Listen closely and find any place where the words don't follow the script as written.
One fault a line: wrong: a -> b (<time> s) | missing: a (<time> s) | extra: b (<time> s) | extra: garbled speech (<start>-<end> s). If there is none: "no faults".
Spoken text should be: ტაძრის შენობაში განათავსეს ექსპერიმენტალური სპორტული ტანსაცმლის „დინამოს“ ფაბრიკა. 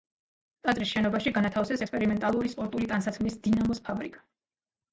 no faults